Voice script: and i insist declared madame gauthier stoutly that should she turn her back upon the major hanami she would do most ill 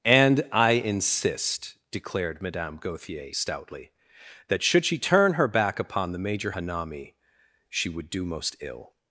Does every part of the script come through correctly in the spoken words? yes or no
yes